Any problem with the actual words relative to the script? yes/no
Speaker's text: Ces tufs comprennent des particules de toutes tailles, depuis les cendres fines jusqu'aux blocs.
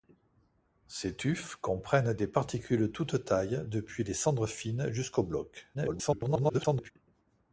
yes